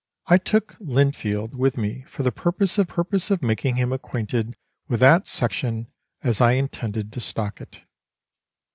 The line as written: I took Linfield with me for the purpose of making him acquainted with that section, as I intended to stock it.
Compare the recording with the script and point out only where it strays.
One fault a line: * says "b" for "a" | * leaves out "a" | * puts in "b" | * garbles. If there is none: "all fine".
* puts in "purpose of"